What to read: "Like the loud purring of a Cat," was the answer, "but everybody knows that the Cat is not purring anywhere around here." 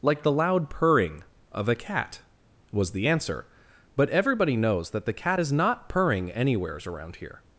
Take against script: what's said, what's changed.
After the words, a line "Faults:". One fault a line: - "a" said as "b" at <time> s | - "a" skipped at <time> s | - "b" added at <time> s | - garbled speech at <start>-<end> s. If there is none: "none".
"Like the loud purring of a Cat," was the answer, "but everybody knows that the Cat is not purring anywheres around here."
Faults:
- "anywhere" said as "anywheres" at 6.3 s